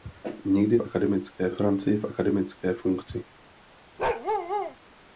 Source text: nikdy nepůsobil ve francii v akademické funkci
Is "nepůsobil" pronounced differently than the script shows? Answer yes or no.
yes